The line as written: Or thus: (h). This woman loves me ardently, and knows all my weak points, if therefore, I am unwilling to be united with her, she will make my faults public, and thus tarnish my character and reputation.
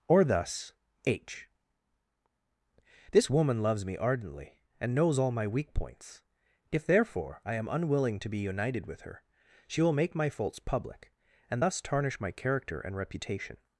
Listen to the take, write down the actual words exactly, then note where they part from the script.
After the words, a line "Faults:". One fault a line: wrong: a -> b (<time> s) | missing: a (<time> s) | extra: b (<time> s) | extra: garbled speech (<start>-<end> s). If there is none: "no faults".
Or thus: (h). This woman loves me ardently, and knows all my weak points, if therefore, I am unwilling to be united with her, she will make my faults public, and thus tarnish my character and reputation.
Faults:
no faults